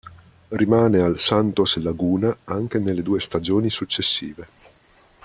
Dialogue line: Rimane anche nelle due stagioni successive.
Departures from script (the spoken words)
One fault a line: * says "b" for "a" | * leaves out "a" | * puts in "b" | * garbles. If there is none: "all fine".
* puts in "al Santos Laguna"